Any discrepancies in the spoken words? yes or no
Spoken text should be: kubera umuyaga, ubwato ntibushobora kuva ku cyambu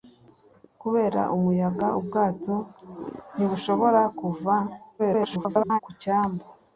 yes